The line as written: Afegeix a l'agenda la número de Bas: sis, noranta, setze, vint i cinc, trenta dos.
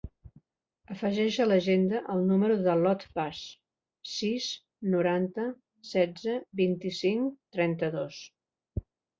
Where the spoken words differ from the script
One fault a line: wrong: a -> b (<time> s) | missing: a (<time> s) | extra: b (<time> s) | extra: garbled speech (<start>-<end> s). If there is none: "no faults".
wrong: la -> el (2.1 s)
extra: l'Ot (2.8 s)